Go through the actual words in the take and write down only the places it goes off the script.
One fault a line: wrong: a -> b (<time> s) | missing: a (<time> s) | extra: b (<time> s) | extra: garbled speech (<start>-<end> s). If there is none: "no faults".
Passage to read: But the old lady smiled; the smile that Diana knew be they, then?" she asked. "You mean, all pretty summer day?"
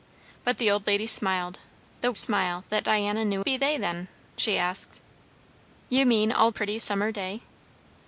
no faults